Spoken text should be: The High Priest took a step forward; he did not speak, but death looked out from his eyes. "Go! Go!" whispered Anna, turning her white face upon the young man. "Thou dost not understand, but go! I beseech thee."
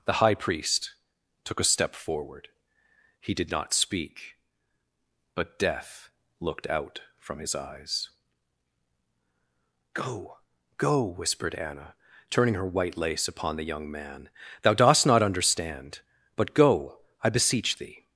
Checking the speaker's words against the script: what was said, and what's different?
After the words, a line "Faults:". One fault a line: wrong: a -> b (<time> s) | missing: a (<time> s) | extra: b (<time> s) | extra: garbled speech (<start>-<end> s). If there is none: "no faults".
The High Priest took a step forward; he did not speak, but death looked out from his eyes. "Go! Go!" whispered Anna, turning her white lace upon the young man. "Thou dost not understand, but go! I beseech thee."
Faults:
wrong: face -> lace (13.0 s)